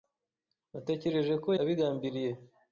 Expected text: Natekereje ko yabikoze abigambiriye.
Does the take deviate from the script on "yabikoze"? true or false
true